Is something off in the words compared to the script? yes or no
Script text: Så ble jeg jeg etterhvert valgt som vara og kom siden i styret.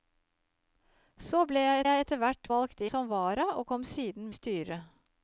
no